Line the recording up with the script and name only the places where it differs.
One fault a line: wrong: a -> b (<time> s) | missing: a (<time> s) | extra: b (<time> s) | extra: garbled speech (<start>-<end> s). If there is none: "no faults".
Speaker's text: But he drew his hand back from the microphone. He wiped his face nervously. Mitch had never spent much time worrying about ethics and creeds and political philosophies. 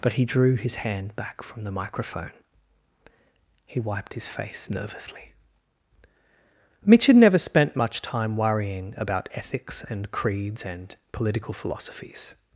no faults